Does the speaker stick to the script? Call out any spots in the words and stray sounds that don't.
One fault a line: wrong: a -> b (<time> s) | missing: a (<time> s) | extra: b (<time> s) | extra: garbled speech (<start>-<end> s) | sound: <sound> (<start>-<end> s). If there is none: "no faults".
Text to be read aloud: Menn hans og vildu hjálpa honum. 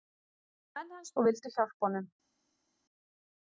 no faults